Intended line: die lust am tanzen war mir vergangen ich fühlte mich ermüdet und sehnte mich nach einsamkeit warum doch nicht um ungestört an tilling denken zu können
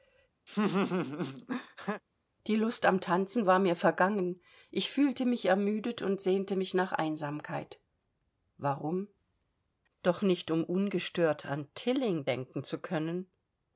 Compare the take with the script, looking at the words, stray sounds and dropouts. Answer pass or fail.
fail